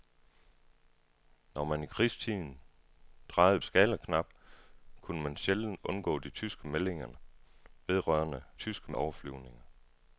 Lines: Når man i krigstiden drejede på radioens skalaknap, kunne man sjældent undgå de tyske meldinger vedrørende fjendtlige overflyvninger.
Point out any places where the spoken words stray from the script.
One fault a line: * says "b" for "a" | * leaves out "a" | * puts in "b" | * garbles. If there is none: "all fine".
* leaves out "på radioens"
* says "tyske" for "fjendtlige"